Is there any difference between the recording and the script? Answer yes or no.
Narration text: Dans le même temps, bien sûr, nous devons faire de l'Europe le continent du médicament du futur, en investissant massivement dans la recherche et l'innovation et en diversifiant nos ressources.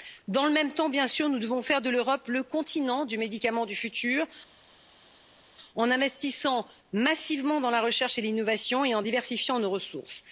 no